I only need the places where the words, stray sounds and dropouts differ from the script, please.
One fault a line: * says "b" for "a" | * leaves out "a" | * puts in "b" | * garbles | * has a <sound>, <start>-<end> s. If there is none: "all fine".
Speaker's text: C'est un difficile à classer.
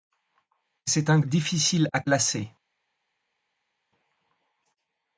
all fine